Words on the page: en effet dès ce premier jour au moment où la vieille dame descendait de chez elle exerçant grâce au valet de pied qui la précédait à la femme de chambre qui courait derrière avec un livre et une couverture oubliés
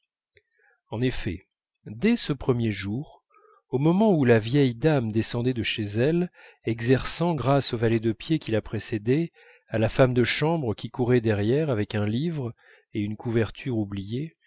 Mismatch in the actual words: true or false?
false